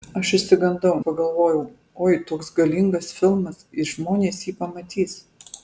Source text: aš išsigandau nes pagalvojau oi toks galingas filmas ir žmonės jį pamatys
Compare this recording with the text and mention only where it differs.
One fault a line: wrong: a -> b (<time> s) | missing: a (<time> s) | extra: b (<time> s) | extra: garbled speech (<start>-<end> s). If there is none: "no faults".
missing: nes (0.9 s)